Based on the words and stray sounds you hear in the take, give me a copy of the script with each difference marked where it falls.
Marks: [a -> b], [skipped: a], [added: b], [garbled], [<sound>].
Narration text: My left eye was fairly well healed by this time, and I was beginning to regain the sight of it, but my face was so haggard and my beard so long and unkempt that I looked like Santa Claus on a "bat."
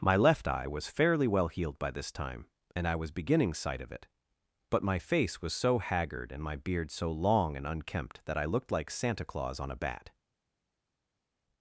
My left eye was fairly well healed by this time, and I was beginning [skipped: to regain the] sight of it, but my face was so haggard and my beard so long and unkempt that I looked like Santa Claus on a "bat."